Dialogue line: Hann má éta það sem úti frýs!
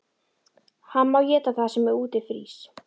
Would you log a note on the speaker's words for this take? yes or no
no